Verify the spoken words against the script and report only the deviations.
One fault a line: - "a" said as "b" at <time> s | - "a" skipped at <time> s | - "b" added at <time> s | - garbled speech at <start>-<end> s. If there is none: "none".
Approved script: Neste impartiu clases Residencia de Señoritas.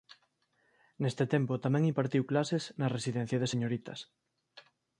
- "tempo tamén" added at 1.3 s
- "na" added at 2.8 s